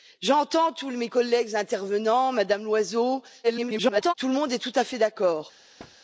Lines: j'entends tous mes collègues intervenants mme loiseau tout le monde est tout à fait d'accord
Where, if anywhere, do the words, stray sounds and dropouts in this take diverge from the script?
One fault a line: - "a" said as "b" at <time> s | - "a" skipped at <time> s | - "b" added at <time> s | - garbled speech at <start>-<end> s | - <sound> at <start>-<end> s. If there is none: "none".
- garbled speech at 3.4-4.1 s
- thud at 5.8-6.0 s